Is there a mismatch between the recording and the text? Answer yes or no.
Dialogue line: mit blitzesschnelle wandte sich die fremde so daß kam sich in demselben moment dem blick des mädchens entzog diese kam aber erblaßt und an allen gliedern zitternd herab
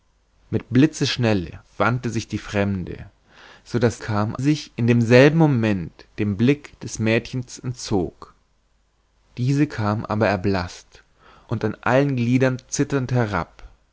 no